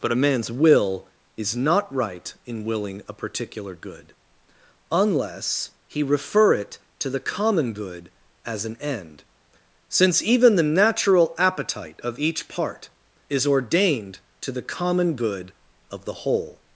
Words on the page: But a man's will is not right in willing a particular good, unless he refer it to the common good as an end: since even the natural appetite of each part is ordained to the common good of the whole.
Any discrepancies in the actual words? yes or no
no